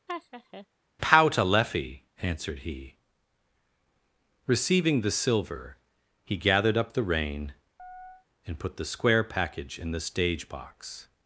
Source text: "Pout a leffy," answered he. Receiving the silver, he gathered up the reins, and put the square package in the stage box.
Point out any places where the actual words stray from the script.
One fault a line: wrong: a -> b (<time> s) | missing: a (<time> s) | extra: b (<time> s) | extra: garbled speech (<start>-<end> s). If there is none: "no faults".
wrong: reins -> rein (7.0 s)